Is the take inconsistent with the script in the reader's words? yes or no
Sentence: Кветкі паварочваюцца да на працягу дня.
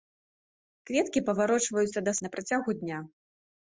no